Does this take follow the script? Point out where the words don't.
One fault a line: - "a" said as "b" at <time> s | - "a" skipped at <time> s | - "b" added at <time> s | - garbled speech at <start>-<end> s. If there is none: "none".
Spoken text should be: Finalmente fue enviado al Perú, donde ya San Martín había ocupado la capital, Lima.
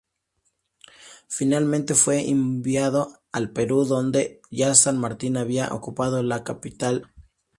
none